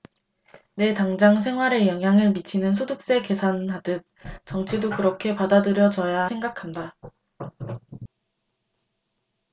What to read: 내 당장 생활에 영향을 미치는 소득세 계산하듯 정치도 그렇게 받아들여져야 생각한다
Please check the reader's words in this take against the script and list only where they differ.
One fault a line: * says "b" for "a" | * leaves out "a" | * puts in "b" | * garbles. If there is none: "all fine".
all fine